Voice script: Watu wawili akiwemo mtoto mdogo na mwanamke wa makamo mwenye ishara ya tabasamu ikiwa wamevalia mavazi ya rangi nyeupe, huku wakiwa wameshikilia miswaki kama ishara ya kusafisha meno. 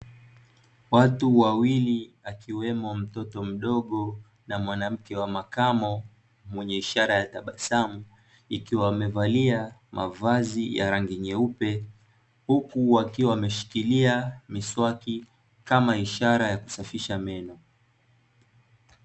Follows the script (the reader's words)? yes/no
yes